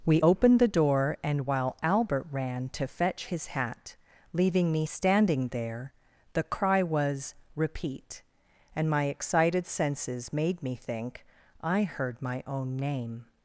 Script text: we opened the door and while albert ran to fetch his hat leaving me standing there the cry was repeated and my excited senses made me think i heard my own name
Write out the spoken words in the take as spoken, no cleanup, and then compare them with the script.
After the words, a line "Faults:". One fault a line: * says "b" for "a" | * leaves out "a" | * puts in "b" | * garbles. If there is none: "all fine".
we opened the door and while albert ran to fetch his hat leaving me standing there the cry was repeat and my excited senses made me think i heard my own name
Faults:
* says "repeat" for "repeated"